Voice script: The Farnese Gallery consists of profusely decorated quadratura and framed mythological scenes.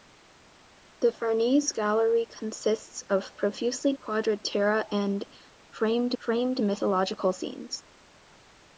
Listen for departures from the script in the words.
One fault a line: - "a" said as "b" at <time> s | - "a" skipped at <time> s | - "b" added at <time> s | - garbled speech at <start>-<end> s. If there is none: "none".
- "decorated" skipped at 3.9 s
- "framed" added at 6.2 s